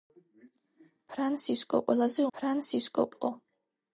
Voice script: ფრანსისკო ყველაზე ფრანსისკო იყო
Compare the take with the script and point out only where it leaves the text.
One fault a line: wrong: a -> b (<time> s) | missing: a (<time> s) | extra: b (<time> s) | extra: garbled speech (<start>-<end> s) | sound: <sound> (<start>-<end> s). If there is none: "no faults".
no faults